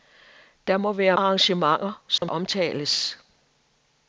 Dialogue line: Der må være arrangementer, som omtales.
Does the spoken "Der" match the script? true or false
true